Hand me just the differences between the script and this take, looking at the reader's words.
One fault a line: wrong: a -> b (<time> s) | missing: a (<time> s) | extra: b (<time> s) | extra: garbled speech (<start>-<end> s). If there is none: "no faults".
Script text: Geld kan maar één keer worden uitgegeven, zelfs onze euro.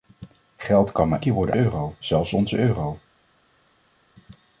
missing: één (1.2 s)
wrong: uitgegeven -> euro (1.5 s)